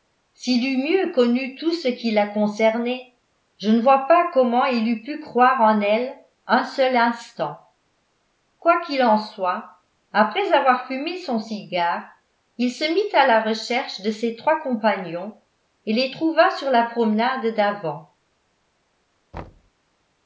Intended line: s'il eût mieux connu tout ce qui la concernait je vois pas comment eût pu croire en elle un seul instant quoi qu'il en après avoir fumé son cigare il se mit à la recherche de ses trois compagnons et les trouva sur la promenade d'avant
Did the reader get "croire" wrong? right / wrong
right